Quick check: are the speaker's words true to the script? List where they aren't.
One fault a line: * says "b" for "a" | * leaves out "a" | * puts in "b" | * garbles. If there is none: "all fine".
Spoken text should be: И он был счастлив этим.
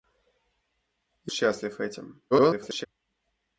* leaves out "он был"
* garbles